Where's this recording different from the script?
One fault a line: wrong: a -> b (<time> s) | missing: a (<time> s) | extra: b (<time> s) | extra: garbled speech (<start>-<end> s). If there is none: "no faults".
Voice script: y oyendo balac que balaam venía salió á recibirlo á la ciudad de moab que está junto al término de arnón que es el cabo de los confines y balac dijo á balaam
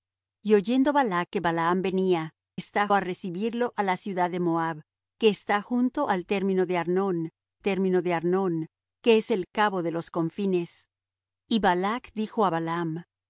wrong: salió -> está (2.6 s)
extra: término de arnón (7.6 s)